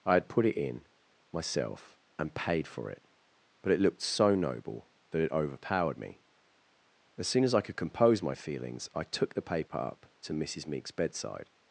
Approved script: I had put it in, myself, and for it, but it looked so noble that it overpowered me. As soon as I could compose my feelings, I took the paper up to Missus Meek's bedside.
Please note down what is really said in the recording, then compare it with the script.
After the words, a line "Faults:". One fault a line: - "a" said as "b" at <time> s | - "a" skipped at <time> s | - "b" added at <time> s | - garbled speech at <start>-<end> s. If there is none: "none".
I had put it in, myself, and paid for it, but it looked so noble that it overpowered me. As soon as I could compose my feelings, I took the paper up to Missus Meek's bedside.
Faults:
- "paid" added at 2.3 s